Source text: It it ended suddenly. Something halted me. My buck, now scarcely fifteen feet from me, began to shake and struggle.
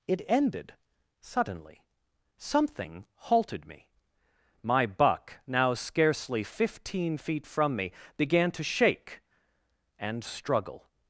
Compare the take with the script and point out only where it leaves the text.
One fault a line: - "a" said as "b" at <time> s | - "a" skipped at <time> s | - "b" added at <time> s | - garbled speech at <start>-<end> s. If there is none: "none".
- "it" skipped at 0.2 s